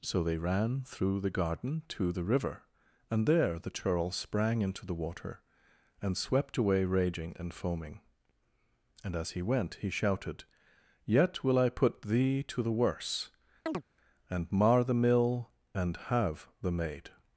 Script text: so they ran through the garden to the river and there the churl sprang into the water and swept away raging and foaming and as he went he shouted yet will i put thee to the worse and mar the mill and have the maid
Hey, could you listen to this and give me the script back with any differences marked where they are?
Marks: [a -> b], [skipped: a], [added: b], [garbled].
so they ran through the garden to the river and there the churl sprang into the water and swept away raging and foaming and as he went he shouted yet will i put thee to the worse and mar the mill and have the maid